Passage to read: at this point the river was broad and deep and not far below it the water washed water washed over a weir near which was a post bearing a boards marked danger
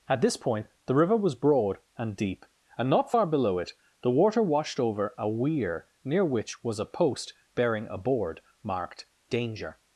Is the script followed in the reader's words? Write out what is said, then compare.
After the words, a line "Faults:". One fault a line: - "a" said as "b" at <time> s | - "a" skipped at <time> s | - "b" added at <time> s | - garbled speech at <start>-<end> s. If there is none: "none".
at this point the river was broad and deep and not far below it the water washed over a weir near which was a post bearing a board marked danger
Faults:
- "water washed" skipped at 4.8 s
- "boards" said as "board" at 8.0 s